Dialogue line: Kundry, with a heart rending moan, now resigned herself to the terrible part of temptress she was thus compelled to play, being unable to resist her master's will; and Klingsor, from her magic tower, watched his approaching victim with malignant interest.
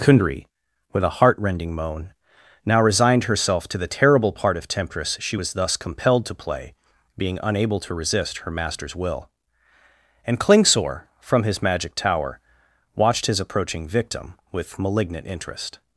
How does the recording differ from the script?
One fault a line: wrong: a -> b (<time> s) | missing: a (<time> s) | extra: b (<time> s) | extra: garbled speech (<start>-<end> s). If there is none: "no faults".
wrong: her -> his (11.4 s)